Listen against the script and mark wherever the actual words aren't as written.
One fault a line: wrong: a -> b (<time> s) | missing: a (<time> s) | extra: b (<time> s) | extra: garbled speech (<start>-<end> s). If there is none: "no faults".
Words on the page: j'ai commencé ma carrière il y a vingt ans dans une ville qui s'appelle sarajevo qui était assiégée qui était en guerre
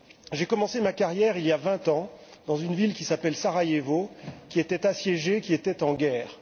no faults